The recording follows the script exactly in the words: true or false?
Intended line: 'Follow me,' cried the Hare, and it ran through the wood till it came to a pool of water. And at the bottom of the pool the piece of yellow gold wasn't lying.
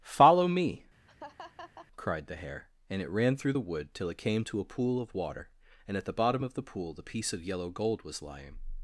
false